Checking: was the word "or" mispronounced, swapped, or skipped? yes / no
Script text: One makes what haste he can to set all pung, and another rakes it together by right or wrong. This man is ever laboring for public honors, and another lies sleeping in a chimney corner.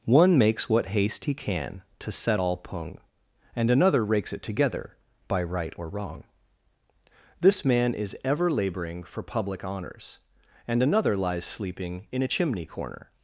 no